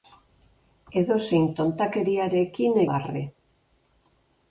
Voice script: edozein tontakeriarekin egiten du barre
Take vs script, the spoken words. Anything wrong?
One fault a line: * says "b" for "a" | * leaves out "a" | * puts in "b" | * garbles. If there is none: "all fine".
* leaves out "egiten du"